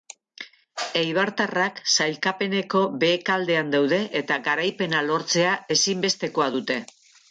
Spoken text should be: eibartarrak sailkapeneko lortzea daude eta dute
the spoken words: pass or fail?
fail